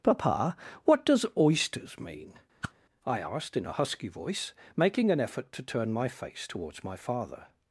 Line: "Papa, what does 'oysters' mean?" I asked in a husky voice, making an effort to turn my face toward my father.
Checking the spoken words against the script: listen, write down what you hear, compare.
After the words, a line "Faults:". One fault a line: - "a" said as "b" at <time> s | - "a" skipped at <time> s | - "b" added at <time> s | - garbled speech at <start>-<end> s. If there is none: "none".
"Papa, what does 'oysters' mean?" I asked in a husky voice, making an effort to turn my face towards my father.
Faults:
- "toward" said as "towards" at 6.4 s